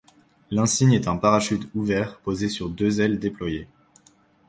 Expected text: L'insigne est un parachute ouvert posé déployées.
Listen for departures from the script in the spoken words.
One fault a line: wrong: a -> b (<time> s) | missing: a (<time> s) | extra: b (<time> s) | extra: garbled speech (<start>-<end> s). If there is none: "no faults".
extra: sur deux ailes (2.5 s)